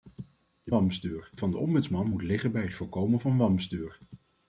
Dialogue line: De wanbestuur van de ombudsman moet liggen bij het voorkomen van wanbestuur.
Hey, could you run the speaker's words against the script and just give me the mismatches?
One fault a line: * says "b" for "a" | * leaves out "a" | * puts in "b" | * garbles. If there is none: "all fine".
all fine